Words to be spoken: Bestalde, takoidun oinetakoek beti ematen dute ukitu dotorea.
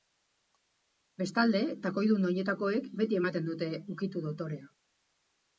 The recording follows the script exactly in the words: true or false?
true